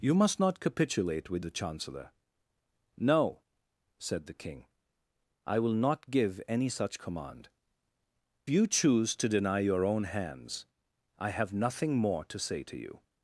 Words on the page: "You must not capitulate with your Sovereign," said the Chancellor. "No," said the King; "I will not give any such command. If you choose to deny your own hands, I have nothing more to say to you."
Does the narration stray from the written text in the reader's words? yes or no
yes